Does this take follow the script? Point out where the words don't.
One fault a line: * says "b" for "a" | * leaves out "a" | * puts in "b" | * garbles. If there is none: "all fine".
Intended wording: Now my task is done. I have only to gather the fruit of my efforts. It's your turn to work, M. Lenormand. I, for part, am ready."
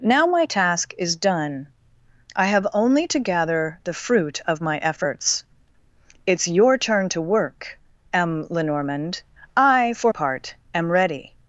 all fine